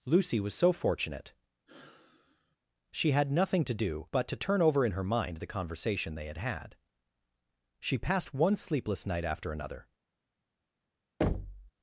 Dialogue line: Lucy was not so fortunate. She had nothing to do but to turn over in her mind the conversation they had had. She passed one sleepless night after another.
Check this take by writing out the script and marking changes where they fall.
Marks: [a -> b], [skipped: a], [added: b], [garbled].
Lucy was [skipped: not] so fortunate. She had nothing to do but to turn over in her mind the conversation they had had. She passed one sleepless night after another.